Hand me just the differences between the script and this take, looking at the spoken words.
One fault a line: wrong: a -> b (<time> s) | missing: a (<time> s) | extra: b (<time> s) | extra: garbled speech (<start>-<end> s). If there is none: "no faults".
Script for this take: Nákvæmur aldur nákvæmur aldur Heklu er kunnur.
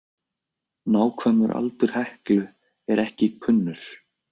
missing: nákvæmur aldur (1.9 s)
extra: ekki (3.0 s)